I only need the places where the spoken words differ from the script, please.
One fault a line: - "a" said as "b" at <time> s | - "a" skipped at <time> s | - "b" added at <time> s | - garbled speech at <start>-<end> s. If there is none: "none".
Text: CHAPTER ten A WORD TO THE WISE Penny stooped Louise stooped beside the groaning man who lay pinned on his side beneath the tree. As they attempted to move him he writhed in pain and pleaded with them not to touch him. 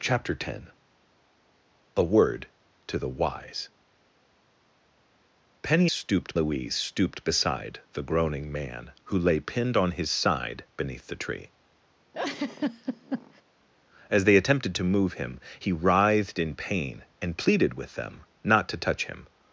none